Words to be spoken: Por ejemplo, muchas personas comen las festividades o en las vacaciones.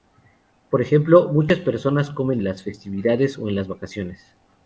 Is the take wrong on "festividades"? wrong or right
right